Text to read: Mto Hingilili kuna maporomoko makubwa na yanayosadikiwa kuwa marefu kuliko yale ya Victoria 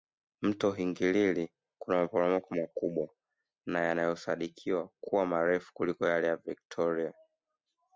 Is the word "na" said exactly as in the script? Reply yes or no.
yes